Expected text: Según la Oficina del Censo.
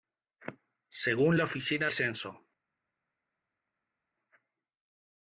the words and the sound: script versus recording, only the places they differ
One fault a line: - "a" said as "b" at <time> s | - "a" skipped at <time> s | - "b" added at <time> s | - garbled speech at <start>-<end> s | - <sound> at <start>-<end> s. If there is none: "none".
- "del" skipped at 1.9 s